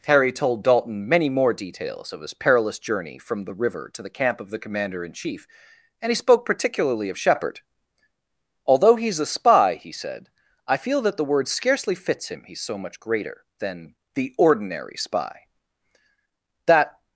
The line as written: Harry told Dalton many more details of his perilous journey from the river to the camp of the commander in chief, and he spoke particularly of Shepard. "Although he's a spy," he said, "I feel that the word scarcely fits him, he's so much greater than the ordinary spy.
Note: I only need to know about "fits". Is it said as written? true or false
true